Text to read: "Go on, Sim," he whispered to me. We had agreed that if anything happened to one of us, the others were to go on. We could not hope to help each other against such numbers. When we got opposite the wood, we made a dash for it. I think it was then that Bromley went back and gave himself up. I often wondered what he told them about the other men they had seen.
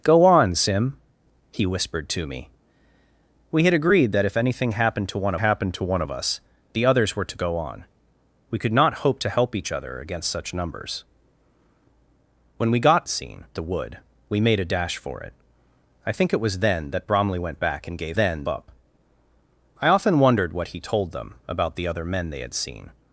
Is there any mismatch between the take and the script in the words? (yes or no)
yes